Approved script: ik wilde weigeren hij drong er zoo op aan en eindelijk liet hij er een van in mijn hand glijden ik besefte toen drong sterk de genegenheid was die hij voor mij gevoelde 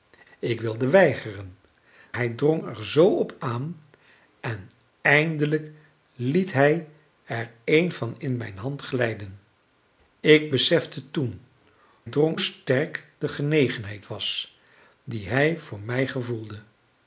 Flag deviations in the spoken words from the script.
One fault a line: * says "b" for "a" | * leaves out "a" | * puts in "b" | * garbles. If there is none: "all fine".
all fine